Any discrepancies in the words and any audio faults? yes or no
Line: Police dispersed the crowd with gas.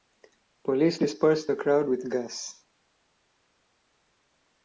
no